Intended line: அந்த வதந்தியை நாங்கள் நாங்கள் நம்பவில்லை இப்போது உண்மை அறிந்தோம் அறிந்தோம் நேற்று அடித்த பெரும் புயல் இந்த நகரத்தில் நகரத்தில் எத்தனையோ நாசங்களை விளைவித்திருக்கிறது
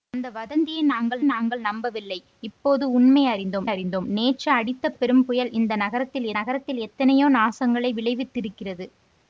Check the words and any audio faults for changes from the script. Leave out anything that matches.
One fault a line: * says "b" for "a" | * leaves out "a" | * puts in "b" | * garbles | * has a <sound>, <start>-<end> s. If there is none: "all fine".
all fine